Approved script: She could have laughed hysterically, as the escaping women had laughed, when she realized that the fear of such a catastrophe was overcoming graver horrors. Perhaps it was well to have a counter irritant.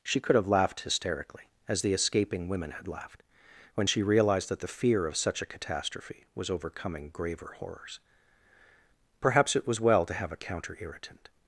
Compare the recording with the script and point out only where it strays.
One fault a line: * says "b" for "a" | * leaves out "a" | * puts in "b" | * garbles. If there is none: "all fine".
all fine